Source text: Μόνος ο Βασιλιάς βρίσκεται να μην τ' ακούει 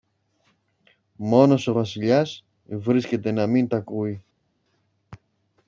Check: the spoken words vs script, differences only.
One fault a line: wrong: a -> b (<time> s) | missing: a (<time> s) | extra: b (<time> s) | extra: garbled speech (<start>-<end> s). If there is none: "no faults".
no faults